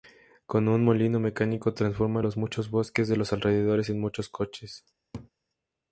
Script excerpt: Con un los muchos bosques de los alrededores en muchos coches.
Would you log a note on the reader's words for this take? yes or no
yes